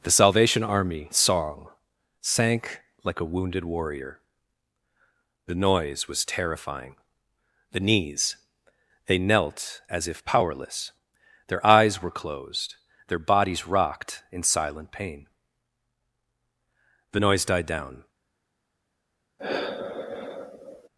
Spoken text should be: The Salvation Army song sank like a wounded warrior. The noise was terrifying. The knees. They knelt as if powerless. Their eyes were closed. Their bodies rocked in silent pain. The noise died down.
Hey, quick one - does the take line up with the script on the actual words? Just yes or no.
yes